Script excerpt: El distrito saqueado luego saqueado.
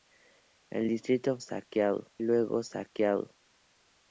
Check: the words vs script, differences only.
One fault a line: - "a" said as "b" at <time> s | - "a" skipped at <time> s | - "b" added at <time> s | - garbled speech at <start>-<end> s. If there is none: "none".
none